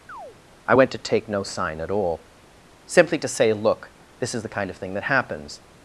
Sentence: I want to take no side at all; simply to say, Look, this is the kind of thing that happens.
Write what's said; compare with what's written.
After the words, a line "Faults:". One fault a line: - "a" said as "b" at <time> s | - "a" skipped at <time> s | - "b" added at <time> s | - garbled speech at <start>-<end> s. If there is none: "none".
I went to take no sign at all; simply to say, Look, this is the kind of thing that happens.
Faults:
- "want" said as "went" at 0.7 s
- "side" said as "sign" at 1.4 s